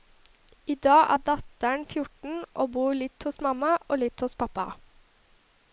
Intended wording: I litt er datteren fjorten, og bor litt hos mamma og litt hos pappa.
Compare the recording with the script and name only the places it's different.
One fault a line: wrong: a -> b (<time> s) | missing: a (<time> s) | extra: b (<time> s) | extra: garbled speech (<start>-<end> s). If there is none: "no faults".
wrong: litt -> dag (0.8 s)